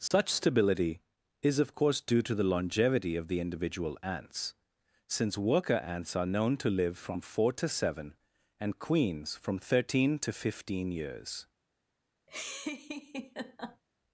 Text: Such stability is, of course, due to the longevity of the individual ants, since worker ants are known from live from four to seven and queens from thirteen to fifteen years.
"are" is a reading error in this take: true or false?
false